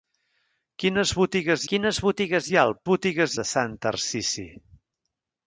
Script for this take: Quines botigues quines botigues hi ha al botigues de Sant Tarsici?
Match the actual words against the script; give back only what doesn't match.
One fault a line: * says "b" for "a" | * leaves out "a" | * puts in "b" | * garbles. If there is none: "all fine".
all fine